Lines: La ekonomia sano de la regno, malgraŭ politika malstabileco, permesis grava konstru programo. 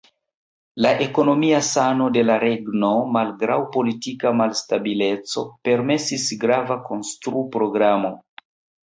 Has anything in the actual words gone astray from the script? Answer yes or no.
no